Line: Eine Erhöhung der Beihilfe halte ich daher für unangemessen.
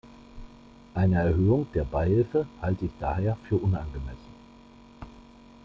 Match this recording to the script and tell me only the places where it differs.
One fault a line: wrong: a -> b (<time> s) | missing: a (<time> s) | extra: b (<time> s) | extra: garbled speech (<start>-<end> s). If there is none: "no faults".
no faults